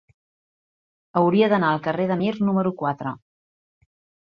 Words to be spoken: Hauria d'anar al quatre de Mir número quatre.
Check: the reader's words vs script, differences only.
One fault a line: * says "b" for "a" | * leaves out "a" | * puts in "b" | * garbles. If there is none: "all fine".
* says "carrer" for "quatre"